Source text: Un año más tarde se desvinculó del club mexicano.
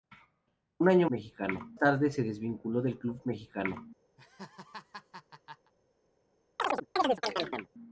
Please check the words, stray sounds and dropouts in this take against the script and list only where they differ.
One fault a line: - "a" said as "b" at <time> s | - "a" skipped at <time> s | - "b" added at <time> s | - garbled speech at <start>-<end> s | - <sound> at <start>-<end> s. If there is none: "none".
- "más" said as "mexicano" at 1.1 s
- laugh at 4.2-5.7 s
- chirp at 6.6-7.7 s